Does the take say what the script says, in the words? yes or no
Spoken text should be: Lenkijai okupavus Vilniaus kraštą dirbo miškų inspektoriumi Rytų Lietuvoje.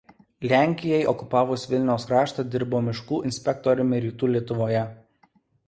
yes